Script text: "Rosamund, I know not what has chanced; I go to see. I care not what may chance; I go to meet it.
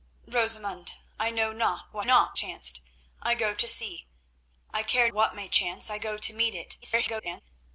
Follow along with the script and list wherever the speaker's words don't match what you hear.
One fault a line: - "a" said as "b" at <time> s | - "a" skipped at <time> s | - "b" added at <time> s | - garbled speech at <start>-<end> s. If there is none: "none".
- "has" said as "not" at 2.0 s
- "not" skipped at 5.1 s
- garbled speech at 6.8-7.4 s